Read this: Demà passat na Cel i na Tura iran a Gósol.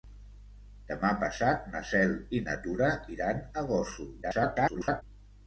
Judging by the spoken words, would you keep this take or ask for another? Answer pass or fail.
fail